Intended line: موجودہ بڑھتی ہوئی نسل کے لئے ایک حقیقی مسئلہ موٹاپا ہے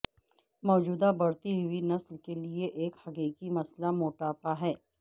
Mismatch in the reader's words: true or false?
false